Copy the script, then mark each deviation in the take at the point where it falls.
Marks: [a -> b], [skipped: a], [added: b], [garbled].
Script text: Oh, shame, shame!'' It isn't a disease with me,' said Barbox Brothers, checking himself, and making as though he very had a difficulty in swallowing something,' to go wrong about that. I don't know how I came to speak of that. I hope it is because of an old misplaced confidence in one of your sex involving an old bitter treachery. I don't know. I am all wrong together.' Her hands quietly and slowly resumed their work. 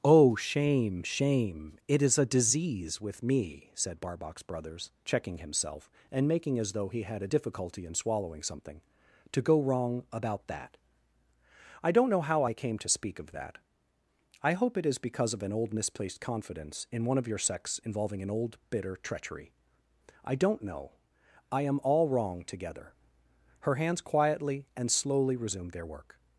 Oh, shame, shame!'' It [isn't -> is] a disease with me,' said Barbox Brothers, checking himself, and making as though he [skipped: very] had a difficulty in swallowing something,' to go wrong about that. I don't know how I came to speak of that. I hope it is because of an old misplaced confidence in one of your sex involving an old bitter treachery. I don't know. I am all wrong together.' Her hands quietly and slowly resumed their work.